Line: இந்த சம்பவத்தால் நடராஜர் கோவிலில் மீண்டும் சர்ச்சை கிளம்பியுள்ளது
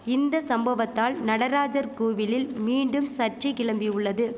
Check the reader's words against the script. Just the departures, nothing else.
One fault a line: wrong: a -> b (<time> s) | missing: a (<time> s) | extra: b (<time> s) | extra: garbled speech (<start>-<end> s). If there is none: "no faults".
no faults